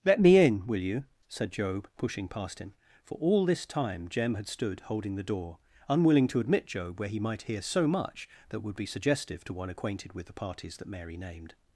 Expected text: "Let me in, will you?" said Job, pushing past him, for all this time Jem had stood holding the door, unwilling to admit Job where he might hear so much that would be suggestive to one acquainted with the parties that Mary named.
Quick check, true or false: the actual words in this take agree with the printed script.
true